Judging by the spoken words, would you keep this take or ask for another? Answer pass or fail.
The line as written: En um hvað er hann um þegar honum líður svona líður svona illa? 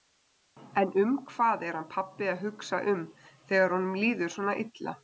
fail